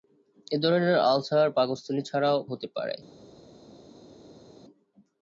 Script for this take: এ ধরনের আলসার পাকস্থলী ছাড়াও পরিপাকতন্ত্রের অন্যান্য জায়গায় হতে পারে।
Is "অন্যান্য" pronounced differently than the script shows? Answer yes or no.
yes